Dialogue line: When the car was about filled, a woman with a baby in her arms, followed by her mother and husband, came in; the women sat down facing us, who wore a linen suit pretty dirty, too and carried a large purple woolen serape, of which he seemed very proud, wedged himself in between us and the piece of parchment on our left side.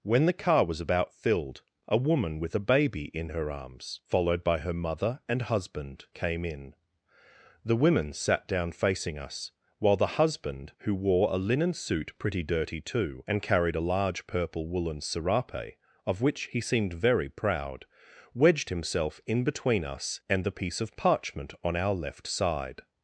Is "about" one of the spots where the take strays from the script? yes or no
no